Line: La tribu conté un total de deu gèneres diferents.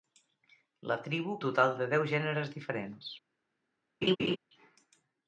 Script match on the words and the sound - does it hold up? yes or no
no